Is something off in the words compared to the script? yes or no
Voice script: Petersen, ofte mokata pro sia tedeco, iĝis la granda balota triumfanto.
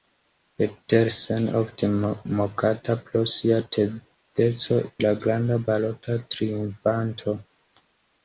yes